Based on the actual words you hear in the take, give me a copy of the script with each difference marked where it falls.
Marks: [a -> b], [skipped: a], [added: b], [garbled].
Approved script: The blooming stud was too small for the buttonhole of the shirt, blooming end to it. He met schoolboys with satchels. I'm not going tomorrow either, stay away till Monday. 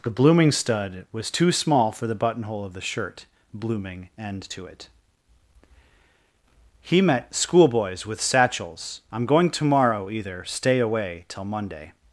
The blooming stud was too small for the buttonhole of the shirt, blooming end to it. He met schoolboys with satchels. I'm [skipped: not] going tomorrow either, stay away till Monday.